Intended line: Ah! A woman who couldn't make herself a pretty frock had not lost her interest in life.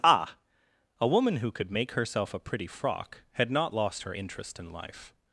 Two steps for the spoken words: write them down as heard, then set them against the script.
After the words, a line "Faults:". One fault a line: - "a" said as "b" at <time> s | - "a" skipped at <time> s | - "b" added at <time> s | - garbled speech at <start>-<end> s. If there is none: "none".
Ah! A woman who could make herself a pretty frock had not lost her interest in life.
Faults:
- "couldn't" said as "could" at 1.5 s